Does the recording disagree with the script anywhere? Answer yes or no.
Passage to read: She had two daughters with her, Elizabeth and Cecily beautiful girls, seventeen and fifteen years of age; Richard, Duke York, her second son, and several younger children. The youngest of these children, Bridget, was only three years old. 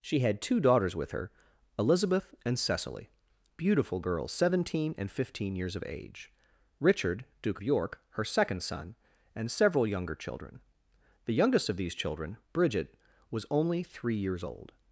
no